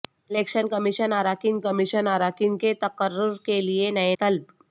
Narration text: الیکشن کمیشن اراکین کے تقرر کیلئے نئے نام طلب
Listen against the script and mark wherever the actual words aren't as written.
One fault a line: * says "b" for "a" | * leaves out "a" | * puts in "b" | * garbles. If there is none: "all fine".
* puts in "کمیشن اراکین"
* leaves out "نام"